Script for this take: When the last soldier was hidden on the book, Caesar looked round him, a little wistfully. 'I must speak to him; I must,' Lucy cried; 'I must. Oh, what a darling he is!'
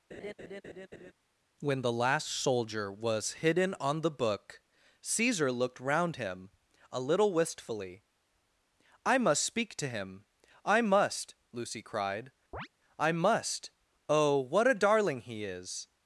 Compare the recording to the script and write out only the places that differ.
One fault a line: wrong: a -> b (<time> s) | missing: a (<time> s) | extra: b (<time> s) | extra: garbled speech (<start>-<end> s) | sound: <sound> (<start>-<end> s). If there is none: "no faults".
sound: laugh (0.1-1.1 s)
sound: chirp (12.5-12.7 s)